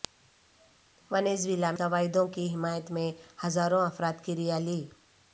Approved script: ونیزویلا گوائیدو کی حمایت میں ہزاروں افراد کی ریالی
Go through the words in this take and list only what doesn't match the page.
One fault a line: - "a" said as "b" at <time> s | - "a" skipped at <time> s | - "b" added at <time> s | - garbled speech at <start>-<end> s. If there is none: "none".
none